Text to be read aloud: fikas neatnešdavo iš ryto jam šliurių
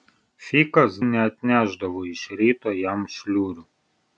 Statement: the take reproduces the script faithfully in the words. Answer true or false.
true